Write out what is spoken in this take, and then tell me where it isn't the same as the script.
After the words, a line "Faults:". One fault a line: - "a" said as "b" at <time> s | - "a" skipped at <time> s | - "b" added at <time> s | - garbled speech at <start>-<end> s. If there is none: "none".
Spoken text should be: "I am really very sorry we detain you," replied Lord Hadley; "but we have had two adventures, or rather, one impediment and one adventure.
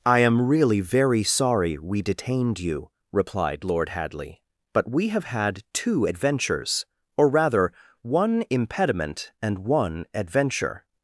"I am really very sorry we detained you," replied Lord Hadley; "but we have had two adventures, or rather, one impediment and one adventure.
Faults:
- "detain" said as "detained" at 2.0 s